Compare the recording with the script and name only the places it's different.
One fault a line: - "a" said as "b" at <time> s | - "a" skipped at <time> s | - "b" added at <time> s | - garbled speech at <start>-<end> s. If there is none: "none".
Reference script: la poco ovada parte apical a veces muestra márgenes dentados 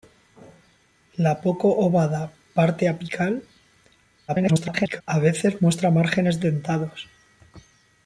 - garbled speech at 4.3-5.0 s